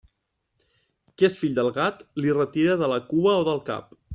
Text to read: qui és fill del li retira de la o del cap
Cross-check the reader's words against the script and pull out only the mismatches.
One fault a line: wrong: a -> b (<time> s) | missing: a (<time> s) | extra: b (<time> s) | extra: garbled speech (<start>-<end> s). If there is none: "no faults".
extra: gat (1.8 s)
extra: cua (3.1 s)